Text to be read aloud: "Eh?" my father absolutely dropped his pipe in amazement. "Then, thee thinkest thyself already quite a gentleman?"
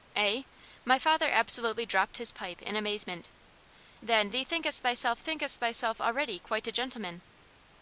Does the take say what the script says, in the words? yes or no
no